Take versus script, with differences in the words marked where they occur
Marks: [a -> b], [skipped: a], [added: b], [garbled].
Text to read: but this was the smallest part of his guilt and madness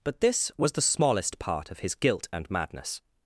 but this was the smallest part of his guilt and madness